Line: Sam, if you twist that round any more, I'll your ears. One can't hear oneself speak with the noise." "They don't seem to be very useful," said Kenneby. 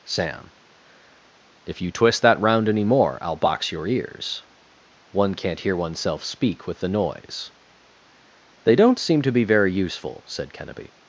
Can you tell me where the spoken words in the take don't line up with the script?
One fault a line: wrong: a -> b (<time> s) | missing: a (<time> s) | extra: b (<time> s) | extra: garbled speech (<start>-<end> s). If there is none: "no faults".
extra: box (3.4 s)